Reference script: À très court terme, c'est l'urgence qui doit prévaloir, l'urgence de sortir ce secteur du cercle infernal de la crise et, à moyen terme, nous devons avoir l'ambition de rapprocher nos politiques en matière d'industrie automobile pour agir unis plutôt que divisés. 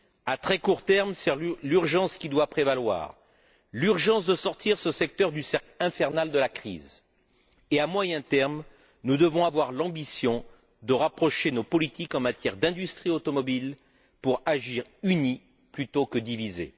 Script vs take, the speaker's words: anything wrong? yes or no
no